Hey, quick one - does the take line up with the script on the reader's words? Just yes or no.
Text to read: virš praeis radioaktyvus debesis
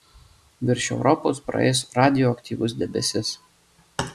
no